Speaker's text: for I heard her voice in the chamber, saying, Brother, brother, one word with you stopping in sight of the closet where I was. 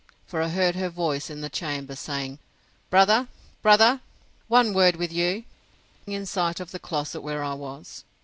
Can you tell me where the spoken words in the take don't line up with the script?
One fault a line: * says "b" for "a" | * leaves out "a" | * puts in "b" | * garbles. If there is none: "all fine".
* leaves out "stopping"